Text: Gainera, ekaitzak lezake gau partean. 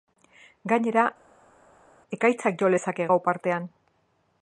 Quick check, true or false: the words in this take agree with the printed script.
false